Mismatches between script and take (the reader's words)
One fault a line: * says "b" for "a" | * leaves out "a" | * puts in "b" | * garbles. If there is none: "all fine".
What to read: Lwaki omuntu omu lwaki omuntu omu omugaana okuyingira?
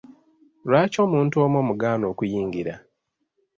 * leaves out "lwaki omuntu omu"